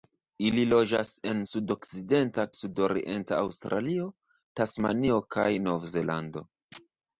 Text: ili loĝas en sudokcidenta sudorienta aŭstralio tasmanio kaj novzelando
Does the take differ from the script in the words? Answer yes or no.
no